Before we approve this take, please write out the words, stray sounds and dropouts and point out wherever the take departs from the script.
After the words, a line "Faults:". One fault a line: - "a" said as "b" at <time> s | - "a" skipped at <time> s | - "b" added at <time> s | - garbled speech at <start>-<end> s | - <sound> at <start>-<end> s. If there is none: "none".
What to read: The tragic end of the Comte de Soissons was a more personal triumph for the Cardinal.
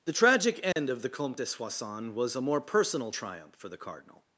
The tragic end of the Comte de Soissons was a more personal triumph for the Cardinal.
Faults:
- dropout at 0.7-0.8 s